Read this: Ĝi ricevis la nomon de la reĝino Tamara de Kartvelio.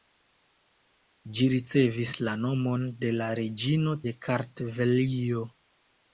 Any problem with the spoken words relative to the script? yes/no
yes